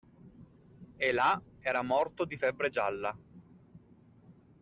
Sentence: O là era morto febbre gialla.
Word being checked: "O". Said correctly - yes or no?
no